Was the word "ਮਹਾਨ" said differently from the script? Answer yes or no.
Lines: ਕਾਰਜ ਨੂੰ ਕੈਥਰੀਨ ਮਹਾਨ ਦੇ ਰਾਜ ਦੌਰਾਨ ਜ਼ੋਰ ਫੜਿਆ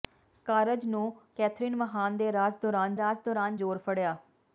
no